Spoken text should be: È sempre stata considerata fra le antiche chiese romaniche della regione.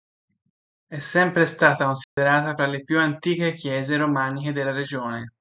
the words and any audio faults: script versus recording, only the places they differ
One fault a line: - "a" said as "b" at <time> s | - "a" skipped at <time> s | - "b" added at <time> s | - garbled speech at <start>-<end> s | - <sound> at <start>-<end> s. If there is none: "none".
- dropout at 2.0-2.2 s
- "più" added at 2.8 s